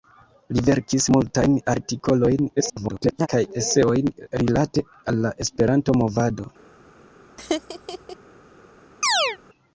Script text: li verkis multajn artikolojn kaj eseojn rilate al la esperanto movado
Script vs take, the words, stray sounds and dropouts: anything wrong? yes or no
yes